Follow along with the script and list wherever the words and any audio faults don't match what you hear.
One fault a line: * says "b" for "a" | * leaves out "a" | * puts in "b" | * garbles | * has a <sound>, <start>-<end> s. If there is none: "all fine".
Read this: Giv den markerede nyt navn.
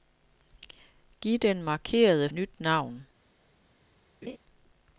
* has a laugh, 4.2-4.4 s